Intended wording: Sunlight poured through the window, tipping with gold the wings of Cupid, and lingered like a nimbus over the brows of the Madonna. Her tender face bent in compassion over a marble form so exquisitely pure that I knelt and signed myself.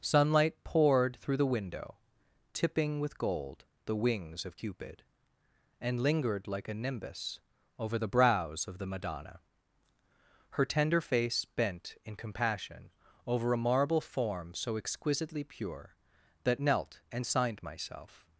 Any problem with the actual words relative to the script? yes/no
yes